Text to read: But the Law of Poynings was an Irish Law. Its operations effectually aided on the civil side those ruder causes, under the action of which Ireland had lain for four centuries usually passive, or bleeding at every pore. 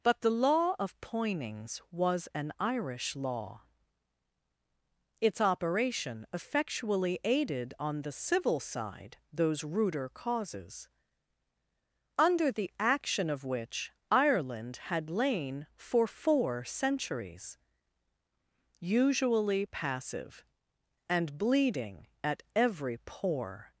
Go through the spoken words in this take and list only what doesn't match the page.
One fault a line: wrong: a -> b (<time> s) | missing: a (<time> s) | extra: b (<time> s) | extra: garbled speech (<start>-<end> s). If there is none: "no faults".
wrong: operations -> operation (5.4 s)
wrong: or -> and (21.1 s)